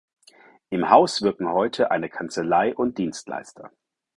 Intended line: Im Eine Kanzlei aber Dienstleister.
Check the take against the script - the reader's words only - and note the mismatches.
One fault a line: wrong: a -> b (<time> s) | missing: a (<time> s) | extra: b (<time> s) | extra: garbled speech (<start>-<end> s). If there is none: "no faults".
extra: Haus wirken heute (0.9 s)
wrong: aber -> und (2.7 s)